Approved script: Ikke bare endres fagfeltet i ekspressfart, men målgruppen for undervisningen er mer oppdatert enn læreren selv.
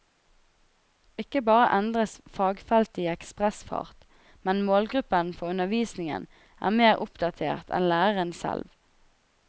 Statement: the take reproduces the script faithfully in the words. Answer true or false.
true